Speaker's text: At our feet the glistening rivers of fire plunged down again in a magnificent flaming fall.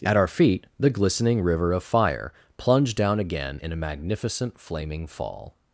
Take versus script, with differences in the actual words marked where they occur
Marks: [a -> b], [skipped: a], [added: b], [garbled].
At our feet the glistening [rivers -> river] of fire plunged down again in a magnificent flaming fall.